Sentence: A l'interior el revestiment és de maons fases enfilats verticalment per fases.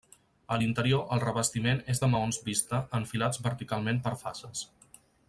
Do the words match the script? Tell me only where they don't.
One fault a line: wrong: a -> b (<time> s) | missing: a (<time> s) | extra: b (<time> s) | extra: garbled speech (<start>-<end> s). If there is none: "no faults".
wrong: fases -> vista (2.5 s)